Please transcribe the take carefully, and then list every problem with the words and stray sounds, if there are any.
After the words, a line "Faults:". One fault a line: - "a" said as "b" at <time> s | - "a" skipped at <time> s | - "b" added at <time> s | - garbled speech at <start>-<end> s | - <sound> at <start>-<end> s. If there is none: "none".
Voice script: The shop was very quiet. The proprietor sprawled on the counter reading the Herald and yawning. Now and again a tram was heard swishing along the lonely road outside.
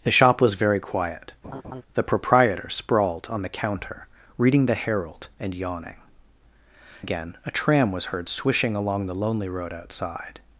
The shop was very quiet. The proprietor sprawled on the counter reading the Herald and yawning. Again a tram was heard swishing along the lonely road outside.
Faults:
- laugh at 1.4-1.8 s
- "Now and" skipped at 6.0 s